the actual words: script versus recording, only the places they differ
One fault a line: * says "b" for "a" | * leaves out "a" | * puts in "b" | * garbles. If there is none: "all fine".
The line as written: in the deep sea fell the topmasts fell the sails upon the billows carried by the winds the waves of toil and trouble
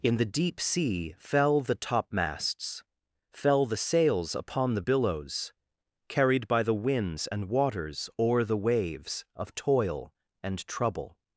* puts in "and waters o'er"